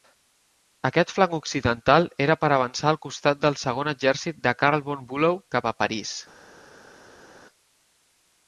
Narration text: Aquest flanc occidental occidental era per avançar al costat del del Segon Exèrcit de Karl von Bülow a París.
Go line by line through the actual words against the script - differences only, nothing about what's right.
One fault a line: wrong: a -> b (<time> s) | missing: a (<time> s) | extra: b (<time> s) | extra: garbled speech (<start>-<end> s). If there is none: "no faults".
missing: occidental (2.1 s)
missing: del (3.6 s)
extra: cap (5.6 s)